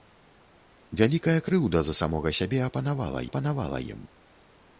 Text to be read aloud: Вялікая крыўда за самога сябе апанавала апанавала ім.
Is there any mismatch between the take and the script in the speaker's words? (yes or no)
no